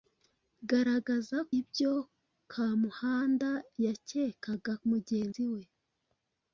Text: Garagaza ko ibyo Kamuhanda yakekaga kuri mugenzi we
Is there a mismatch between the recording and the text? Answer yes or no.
yes